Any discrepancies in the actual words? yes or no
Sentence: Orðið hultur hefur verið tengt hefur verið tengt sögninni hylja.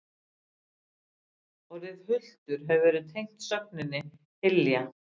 yes